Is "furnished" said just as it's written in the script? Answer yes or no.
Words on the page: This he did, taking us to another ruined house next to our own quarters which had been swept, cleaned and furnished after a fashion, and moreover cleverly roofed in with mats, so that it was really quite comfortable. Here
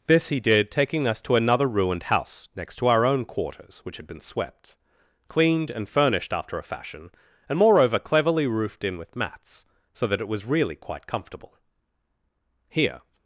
yes